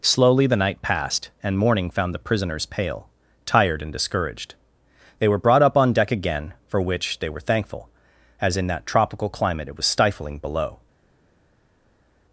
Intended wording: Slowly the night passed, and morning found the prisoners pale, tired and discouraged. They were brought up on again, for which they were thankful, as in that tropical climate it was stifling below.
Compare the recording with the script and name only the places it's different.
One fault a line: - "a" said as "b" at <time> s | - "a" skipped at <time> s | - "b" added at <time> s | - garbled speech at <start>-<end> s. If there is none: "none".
- "deck" added at 5.9 s